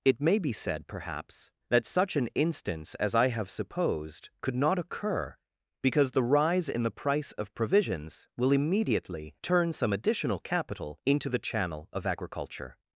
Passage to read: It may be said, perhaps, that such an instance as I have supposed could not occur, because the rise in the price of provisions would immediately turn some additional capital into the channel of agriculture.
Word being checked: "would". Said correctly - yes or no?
no